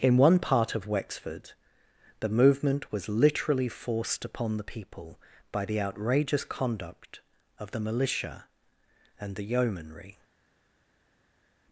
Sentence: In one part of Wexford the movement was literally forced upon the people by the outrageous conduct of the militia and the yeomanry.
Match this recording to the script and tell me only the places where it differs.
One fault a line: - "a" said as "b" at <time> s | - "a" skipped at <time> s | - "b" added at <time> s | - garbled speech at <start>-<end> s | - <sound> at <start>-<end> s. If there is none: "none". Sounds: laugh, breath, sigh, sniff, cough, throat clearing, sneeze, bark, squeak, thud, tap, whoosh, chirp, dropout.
none